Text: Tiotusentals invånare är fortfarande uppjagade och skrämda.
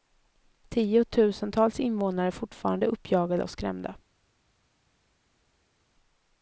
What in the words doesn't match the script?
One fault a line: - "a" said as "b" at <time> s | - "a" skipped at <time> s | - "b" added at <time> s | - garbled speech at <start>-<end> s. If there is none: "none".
none